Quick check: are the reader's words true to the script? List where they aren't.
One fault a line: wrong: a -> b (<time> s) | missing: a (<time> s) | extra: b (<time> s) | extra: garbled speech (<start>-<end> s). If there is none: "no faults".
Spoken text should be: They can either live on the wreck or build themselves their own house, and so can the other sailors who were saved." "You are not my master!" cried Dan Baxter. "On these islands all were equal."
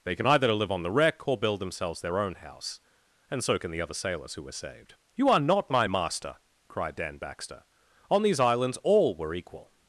no faults